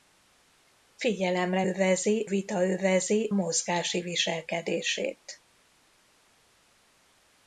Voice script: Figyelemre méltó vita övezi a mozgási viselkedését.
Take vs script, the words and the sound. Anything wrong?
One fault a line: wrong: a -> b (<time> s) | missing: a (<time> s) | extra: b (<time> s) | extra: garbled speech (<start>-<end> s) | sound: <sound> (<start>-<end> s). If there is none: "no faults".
wrong: méltó -> övezi (1.6 s)
missing: a (3.3 s)